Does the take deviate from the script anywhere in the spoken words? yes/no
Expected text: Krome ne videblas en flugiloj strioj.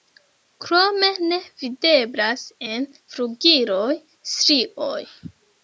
no